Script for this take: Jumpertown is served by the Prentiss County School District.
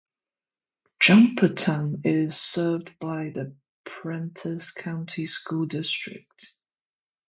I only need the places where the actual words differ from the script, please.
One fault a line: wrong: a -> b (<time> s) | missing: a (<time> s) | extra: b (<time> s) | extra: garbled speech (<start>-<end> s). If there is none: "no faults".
no faults